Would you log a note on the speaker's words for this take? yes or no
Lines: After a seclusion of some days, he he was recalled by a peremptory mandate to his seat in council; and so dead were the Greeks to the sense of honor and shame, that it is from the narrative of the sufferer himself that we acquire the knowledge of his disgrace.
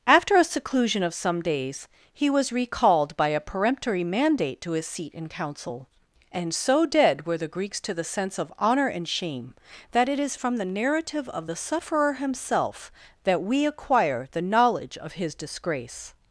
yes